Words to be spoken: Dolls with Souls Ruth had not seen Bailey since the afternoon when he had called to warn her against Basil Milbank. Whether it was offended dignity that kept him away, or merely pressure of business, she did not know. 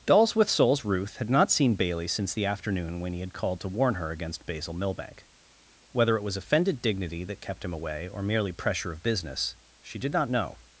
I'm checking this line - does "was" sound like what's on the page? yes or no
yes